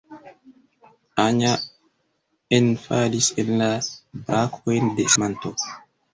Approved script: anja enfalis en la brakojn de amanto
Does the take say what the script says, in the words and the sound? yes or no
yes